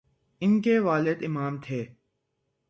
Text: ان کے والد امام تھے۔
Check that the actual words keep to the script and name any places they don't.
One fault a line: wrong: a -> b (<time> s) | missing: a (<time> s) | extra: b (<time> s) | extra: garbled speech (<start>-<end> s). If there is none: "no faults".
no faults